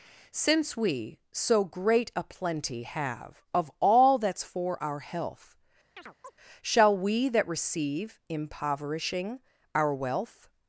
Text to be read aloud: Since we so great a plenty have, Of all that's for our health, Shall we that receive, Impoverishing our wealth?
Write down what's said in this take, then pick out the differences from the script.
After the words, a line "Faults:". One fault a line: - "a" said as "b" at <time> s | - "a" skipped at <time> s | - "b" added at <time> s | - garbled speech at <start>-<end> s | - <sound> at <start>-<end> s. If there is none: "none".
Since we so great a plenty have, Of all that's for our health, Shall we that receive, Impoverishing our wealth?
Faults:
- chirp at 6.0-6.3 s